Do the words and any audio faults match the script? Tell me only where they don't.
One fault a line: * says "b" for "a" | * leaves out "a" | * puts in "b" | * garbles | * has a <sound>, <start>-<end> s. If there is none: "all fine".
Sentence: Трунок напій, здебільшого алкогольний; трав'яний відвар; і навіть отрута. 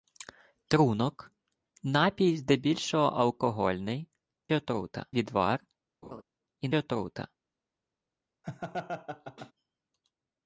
* says "отрута" for "трав'яний"
* has a laugh, 6.0-6.2 s
* leaves out "навіть"
* has a laugh, 8.4-9.5 s